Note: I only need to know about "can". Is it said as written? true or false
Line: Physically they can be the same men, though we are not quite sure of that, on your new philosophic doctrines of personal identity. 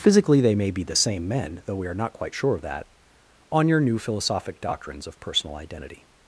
false